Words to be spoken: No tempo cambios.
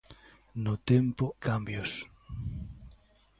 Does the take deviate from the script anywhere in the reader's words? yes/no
no